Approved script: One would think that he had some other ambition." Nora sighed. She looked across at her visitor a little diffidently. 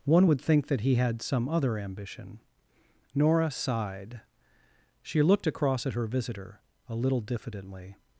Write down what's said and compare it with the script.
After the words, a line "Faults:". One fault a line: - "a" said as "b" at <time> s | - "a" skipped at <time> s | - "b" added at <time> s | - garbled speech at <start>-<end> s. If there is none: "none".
One would think that he had some other ambition." Nora sighed. She looked across at her visitor a little diffidently.
Faults:
none